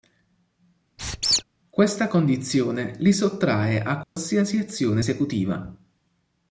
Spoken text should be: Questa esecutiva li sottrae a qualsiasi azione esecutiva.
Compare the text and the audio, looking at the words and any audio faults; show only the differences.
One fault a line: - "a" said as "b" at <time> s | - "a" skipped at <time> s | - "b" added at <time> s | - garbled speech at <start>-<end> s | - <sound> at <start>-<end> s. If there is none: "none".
- squeak at 1.0-1.4 s
- "esecutiva" said as "condizione" at 2.1 s
- dropout at 4.0-4.2 s